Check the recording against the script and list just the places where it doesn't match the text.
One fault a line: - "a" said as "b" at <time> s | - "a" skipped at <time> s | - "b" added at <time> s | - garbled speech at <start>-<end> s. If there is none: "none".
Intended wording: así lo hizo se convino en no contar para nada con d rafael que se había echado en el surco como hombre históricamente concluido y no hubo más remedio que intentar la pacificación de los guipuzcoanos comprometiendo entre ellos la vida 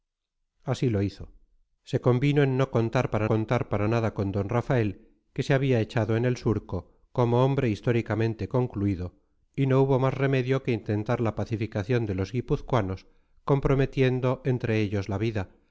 - "contar para" added at 3.3 s